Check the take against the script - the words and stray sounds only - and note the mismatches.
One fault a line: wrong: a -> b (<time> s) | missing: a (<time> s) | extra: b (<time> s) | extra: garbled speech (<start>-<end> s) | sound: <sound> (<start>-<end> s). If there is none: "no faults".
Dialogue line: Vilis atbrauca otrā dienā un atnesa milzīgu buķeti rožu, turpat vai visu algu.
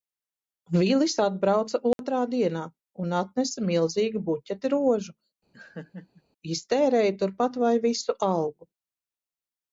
sound: dropout (1.9-2.0 s)
sound: laugh (5.5-6.2 s)
extra: iztērēja (6.6 s)